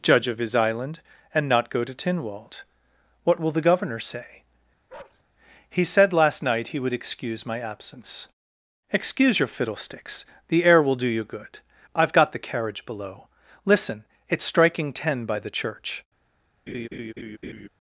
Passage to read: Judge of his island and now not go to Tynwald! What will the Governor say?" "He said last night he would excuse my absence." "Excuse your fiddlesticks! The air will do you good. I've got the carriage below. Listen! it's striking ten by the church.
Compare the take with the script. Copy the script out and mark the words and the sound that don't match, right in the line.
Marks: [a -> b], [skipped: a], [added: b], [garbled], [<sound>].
Judge of his island and [skipped: now] not go to Tynwald! What will the Governor say?" [bark] "He said last night he would excuse my absence." "Excuse your fiddlesticks! The air will do you good. I've got the carriage below. Listen! it's striking ten by the church. [laugh]